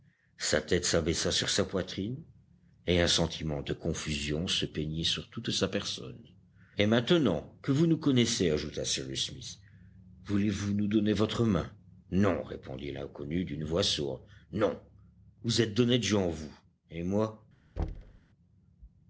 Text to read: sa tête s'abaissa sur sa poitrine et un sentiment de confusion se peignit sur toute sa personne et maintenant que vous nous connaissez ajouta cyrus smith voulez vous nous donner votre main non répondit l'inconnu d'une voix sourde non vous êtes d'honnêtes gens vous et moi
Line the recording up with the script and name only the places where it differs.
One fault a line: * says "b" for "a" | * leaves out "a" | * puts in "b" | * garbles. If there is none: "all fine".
all fine